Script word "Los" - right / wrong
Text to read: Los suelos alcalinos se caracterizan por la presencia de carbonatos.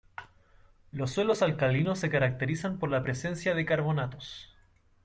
right